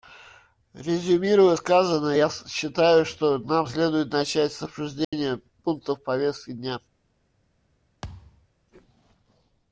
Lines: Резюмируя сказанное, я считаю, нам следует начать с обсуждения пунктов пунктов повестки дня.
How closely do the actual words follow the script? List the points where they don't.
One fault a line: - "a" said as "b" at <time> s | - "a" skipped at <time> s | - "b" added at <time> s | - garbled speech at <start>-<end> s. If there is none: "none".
- "что" added at 3.1 s
- "пунктов" skipped at 6.0 s